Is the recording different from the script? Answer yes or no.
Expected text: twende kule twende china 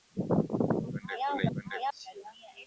no